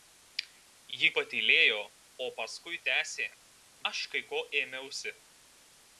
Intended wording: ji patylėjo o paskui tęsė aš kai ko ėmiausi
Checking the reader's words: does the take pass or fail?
pass